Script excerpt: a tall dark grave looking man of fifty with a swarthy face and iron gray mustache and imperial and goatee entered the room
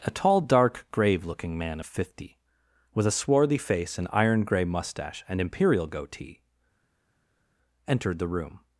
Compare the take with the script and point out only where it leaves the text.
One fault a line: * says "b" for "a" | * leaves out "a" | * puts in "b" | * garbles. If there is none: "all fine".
* leaves out "and"